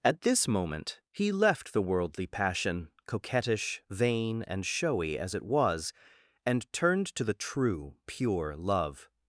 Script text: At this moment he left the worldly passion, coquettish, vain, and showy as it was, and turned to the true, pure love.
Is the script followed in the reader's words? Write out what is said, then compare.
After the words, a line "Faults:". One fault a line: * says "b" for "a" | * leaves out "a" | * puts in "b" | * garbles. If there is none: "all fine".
At this moment he left the worldly passion, coquettish, vain, and showy as it was, and turned to the true, pure love.
Faults:
all fine